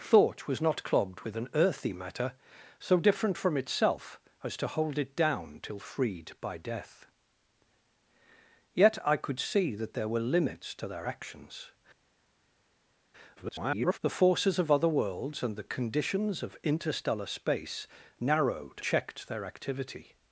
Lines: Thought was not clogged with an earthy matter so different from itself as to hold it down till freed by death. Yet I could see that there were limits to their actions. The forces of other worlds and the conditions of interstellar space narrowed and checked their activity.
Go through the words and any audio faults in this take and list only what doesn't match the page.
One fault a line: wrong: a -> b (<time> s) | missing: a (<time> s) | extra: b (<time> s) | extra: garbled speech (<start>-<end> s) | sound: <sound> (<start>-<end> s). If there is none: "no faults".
extra: garbled speech (13.4-14.0 s)
missing: and (18.8 s)